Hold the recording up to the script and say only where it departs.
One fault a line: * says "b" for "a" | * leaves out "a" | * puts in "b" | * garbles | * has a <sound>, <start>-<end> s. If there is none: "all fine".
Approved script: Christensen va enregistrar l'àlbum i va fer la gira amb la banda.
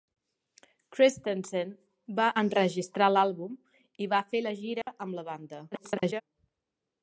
* has a dropout, 4.8-4.9 s
* garbles